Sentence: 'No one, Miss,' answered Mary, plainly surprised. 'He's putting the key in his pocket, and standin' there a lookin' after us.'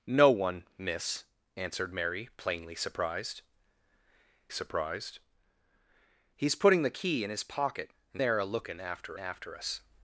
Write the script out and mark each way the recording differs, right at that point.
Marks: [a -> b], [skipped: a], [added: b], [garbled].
'No one, Miss,' answered Mary, plainly surprised. [added: surprised] 'He's putting the key in his pocket, and [skipped: standin'] there a lookin' after [added: after] us.'